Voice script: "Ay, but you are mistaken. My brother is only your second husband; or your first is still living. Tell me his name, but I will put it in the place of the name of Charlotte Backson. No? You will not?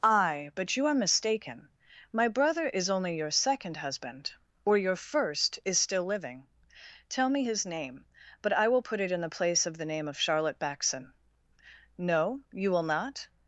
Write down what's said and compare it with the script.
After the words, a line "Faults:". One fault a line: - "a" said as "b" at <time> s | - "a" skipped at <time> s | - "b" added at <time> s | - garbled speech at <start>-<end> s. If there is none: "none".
"Ay, but you are mistaken. My brother is only your second husband; or your first is still living. Tell me his name, but I will put it in the place of the name of Charlotte Backson. No? You will not?
Faults:
none